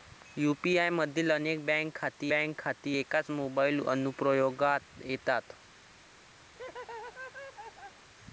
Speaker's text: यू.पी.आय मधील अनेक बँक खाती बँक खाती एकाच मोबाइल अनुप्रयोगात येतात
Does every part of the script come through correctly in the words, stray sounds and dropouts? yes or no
no